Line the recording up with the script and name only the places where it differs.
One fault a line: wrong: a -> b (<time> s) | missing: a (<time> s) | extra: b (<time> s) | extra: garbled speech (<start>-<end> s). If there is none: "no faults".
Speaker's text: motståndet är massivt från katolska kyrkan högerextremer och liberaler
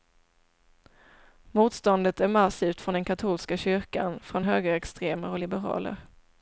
extra: den (2.9 s)
extra: från (4.2 s)